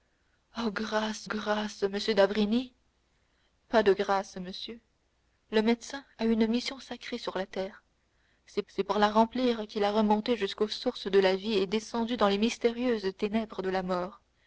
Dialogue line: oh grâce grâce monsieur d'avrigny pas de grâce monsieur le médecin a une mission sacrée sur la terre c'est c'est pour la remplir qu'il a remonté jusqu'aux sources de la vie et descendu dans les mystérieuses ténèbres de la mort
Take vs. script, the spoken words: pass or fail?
pass